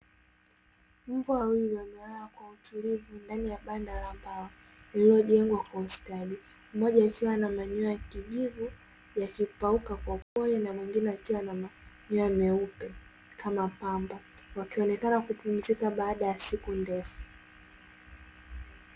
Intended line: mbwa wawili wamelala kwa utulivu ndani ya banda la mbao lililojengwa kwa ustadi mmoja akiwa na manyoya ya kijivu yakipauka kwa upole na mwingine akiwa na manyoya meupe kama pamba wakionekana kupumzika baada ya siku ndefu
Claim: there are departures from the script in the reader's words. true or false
false